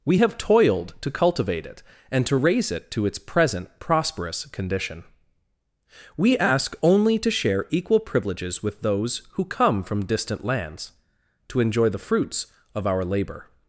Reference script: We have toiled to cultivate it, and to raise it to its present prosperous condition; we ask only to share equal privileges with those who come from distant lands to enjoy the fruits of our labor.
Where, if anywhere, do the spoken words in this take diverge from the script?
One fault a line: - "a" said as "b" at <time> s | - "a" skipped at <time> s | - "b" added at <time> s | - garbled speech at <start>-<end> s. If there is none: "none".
none